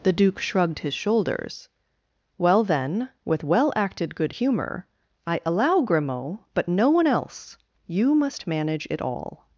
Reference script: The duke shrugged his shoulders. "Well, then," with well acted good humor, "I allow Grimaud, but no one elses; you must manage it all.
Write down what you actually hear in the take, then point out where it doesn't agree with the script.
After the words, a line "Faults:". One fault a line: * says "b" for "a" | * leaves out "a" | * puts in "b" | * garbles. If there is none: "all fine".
The duke shrugged his shoulders. "Well, then," with well acted good humor, "I allow Grimaud, but no one else; you must manage it all.
Faults:
* says "else" for "elses"